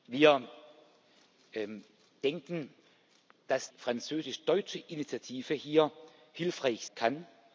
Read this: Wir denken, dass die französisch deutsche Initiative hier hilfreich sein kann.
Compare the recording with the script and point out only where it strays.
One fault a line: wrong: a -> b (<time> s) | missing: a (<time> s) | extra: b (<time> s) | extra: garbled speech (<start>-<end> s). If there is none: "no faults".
missing: die (3.7 s)
missing: sein (6.9 s)